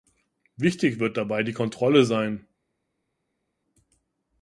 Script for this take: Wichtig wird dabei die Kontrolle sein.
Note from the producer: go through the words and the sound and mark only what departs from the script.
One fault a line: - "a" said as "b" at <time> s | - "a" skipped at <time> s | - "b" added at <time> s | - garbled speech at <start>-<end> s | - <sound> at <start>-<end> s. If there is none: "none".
none